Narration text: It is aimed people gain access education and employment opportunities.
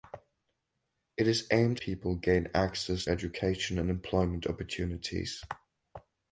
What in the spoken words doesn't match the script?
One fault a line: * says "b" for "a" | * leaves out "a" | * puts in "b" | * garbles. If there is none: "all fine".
all fine